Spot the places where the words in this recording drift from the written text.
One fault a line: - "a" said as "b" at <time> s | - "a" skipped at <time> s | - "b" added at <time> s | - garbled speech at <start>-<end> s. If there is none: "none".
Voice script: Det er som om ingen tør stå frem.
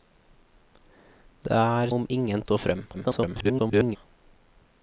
- "som" skipped at 1.9 s
- "tør" skipped at 2.4 s
- garbled speech at 2.9-4.0 s